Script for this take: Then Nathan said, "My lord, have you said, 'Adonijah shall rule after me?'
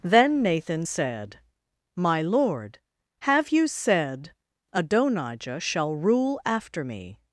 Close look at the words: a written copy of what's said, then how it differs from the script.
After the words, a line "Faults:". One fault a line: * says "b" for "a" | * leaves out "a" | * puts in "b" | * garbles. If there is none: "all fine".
Then Nathan said, "My lord, have you said, 'Adonijah shall rule after me?'
Faults:
all fine